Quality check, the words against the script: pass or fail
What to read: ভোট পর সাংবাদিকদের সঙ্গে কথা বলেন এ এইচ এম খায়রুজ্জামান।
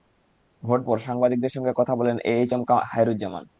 pass